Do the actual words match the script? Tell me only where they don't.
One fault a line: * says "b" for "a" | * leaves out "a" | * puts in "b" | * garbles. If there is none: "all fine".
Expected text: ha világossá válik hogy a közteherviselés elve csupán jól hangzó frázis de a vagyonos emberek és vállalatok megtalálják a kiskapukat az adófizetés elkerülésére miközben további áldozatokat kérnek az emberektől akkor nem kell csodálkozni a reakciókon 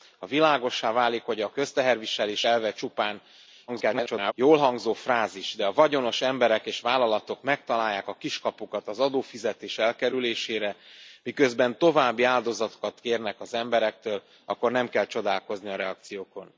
* garbles